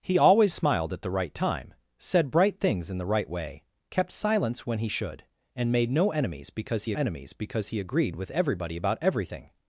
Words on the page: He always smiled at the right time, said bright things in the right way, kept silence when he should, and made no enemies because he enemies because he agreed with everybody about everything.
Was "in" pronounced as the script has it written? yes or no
yes